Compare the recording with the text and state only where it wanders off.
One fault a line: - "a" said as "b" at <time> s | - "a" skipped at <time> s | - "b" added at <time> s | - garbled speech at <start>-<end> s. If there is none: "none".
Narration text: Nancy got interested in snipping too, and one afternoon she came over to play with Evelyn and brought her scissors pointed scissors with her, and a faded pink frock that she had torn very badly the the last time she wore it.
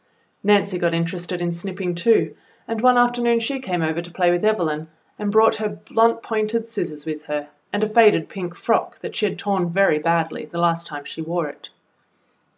- "scissors" said as "blunt" at 5.9 s
- "the" skipped at 10.6 s